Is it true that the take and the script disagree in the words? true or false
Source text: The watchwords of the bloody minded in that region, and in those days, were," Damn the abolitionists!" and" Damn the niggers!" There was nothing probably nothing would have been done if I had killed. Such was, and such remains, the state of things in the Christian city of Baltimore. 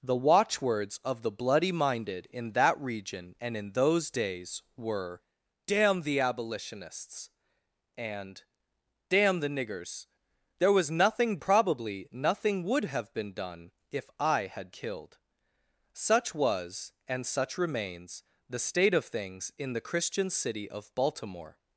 false